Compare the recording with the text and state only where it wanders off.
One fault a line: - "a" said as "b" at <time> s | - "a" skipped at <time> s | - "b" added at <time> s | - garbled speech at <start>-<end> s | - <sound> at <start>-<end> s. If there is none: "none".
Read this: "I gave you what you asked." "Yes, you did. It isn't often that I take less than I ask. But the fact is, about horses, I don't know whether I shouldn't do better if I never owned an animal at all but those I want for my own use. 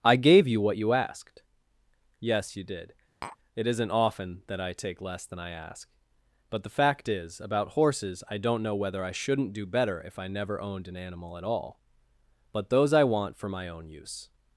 - tap at 3.2-3.4 s